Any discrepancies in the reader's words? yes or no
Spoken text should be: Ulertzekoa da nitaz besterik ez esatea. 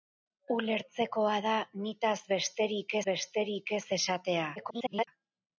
yes